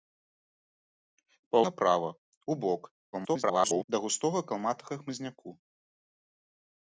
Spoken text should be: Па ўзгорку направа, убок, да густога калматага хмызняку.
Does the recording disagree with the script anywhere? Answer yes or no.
yes